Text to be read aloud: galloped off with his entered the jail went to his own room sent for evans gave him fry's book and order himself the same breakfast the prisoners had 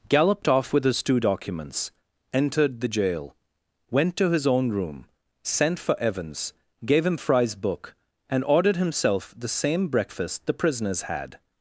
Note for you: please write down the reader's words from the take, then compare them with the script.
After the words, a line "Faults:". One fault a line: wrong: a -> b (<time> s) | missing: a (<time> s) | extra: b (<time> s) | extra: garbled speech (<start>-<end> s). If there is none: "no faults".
galloped off with his two documents entered the jail went to his own room sent for evans gave him fry's book and ordered himself the same breakfast the prisoners had
Faults:
extra: two documents (1.0 s)
wrong: order -> ordered (8.4 s)